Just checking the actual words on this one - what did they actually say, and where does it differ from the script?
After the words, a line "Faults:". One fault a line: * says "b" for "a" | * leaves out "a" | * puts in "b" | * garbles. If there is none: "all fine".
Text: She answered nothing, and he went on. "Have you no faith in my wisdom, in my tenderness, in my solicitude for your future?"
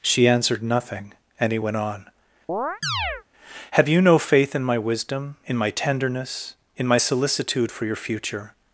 She answered nothing, and he went on. "Have you no faith in my wisdom, in my tenderness, in my solicitude for your future?"
Faults:
all fine